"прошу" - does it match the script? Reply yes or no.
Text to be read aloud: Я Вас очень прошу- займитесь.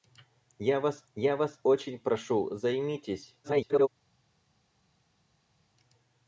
yes